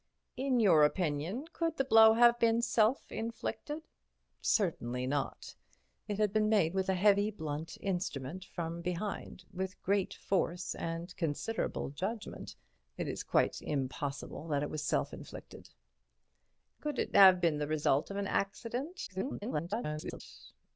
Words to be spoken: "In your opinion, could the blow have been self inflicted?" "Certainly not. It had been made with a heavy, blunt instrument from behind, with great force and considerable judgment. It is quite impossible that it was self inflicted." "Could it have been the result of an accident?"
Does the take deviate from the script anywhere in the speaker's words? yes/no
yes